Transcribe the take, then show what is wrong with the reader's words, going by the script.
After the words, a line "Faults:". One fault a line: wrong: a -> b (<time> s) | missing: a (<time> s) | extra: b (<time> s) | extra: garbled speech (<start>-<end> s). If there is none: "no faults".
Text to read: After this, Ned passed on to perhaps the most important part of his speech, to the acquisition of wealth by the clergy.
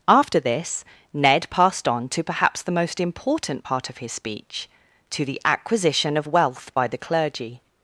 After this, Ned passed on to perhaps the most important part of his speech, to the acquisition of wealth by the clergy.
Faults:
no faults